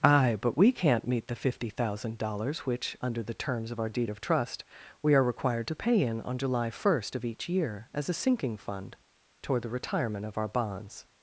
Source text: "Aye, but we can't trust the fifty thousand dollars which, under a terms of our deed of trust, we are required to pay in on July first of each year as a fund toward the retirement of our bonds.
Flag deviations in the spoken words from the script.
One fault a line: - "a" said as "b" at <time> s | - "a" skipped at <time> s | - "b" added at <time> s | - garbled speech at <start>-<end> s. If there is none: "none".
- "trust" said as "meet" at 1.1 s
- "a" said as "the" at 3.2 s
- "sinking" added at 8.1 s